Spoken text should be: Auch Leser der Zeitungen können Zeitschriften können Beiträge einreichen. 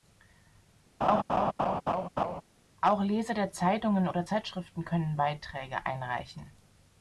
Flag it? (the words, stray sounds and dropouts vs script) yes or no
yes